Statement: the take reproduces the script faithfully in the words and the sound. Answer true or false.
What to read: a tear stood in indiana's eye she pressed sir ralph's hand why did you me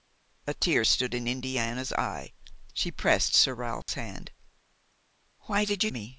false